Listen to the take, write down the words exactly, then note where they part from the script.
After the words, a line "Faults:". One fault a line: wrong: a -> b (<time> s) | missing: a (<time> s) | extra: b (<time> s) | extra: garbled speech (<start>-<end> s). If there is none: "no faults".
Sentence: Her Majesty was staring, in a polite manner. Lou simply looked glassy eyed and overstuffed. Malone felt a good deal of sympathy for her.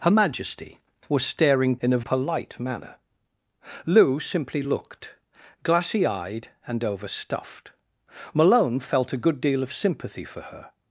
Her Majesty was staring, in a polite manner. Lou simply looked glassy eyed and overstuffed. Malone felt a good deal of sympathy for her.
Faults:
no faults